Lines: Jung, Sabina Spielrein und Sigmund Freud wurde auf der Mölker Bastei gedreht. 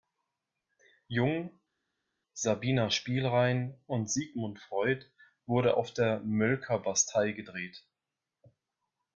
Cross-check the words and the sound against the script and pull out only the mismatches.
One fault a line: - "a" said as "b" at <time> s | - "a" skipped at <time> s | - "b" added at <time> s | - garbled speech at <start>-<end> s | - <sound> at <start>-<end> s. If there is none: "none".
none